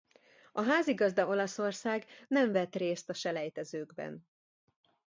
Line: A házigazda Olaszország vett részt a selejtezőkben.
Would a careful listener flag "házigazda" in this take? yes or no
no